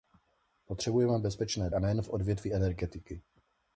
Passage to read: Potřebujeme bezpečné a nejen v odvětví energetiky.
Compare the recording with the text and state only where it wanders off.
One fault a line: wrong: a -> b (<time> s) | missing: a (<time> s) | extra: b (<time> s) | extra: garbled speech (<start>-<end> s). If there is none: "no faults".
no faults